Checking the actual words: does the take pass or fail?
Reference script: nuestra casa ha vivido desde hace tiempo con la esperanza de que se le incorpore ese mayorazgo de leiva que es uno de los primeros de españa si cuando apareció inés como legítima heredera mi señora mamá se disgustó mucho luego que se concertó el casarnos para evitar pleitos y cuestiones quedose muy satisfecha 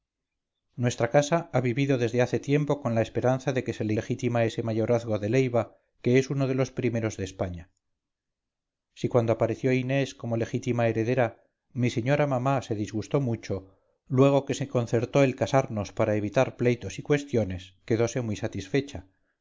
fail